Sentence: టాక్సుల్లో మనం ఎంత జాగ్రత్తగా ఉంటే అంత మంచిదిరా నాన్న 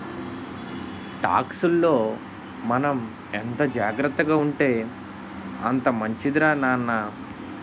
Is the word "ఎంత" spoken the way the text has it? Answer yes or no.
yes